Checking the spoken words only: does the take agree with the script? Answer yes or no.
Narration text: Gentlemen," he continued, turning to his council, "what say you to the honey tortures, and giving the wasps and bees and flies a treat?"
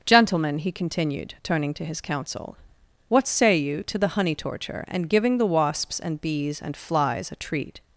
no